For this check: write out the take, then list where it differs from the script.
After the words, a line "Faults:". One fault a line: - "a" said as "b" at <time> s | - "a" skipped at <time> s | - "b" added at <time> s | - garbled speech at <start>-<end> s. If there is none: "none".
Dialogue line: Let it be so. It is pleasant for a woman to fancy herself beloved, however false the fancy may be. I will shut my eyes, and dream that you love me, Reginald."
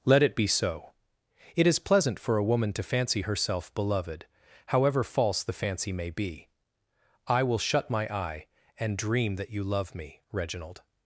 Let it be so. It is pleasant for a woman to fancy herself beloved, however false the fancy may be. I will shut my eye, and dream that you love me, Reginald."
Faults:
- "eyes" said as "eye" at 8.1 s